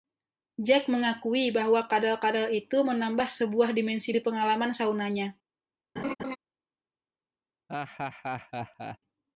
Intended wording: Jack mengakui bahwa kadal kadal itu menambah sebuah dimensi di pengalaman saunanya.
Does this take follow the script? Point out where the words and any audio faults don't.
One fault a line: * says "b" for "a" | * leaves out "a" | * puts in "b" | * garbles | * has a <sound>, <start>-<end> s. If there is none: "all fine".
* has a laugh, 6.0-6.4 s
* has a laugh, 7.7-9.0 s